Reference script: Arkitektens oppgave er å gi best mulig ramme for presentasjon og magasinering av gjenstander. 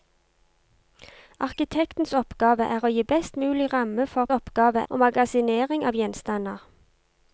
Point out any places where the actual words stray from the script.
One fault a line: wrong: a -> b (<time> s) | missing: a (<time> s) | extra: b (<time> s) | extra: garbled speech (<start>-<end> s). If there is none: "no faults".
wrong: presentasjon -> oppgave (4.3 s)